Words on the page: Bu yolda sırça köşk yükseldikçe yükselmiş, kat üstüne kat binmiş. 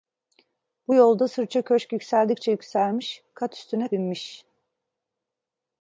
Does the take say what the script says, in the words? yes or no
no